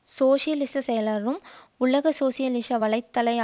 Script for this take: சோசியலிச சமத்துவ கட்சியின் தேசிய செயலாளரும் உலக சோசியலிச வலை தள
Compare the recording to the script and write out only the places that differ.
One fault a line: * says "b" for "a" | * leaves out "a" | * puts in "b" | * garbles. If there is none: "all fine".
* leaves out "சமத்துவ கட்சியின் தேசிய"